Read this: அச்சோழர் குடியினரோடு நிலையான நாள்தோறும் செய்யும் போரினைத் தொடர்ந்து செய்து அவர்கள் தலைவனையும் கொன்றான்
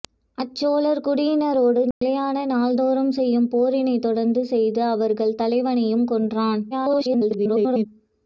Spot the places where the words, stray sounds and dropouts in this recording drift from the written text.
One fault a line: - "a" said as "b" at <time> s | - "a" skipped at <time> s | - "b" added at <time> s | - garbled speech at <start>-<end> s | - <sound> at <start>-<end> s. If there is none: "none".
- dropout at 1.9-2.0 s
- garbled speech at 6.7-7.9 s